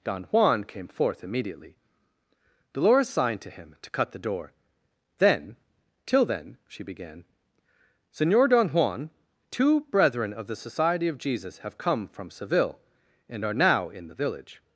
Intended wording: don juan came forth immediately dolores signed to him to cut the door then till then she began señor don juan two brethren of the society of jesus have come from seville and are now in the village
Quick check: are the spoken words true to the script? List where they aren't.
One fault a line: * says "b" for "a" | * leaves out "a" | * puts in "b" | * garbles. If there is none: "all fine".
all fine